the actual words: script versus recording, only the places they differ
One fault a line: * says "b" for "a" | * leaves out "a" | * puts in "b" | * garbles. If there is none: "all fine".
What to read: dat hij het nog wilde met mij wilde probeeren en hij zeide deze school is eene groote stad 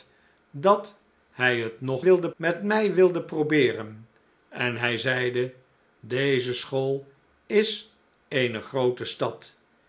all fine